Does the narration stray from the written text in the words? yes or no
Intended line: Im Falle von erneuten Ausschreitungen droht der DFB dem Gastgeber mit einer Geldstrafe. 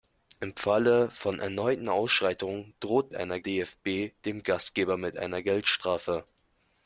yes